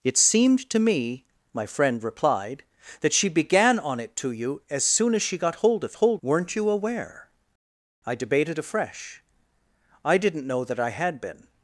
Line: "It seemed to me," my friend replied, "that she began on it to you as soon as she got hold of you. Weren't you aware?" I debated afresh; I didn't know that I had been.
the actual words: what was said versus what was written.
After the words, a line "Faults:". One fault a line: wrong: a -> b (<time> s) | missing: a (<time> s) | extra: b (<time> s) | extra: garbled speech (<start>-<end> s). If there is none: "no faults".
"It seemed to me," my friend replied, "that she began on it to you as soon as she got hold of hold. Weren't you aware?" I debated afresh; I didn't know that I had been.
Faults:
wrong: you -> hold (5.9 s)